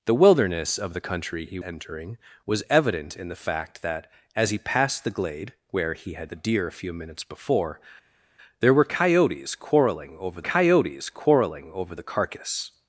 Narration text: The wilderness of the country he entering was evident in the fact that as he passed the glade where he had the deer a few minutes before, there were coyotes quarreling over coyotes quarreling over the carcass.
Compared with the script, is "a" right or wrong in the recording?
right